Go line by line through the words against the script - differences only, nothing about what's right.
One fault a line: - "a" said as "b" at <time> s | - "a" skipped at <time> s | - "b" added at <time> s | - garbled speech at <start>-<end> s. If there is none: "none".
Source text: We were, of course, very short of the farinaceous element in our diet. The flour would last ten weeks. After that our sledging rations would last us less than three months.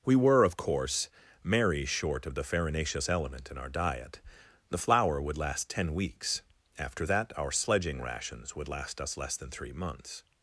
- "very" said as "merry" at 1.4 s